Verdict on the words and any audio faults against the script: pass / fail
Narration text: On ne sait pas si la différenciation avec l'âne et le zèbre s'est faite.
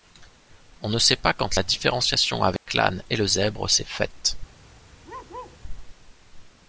fail